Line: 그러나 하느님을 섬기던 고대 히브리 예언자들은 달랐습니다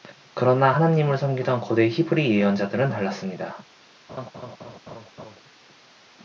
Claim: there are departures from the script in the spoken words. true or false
false